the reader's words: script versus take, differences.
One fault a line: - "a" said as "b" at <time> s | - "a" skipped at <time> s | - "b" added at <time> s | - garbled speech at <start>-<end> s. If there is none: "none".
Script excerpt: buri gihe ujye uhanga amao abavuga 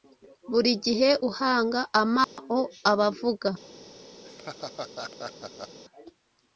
- "ujye" skipped at 1.1 s